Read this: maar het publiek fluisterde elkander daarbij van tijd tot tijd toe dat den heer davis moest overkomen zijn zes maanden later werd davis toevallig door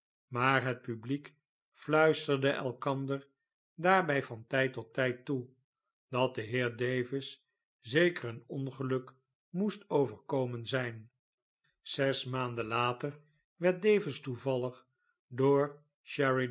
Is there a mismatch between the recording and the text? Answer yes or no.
yes